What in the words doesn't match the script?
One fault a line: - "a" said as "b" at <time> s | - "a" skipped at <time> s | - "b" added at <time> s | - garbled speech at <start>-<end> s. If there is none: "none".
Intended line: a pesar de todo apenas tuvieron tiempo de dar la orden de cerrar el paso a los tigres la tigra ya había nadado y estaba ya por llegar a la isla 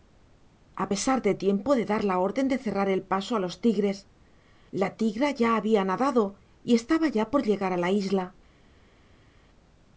- "todo apenas tuvieron" skipped at 1.3 s